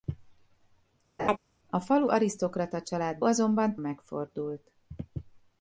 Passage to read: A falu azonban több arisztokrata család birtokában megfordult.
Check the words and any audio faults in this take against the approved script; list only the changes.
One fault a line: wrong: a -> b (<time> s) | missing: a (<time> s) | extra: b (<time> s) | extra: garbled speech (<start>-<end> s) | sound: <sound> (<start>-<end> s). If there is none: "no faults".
sound: laugh (1.2-1.4 s)
missing: azonban több (2.1 s)
wrong: birtokában -> azonban (3.2 s)